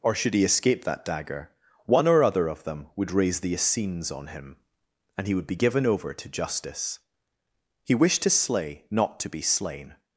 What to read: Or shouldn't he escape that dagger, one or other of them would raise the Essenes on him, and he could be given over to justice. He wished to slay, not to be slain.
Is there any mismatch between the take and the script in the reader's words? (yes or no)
yes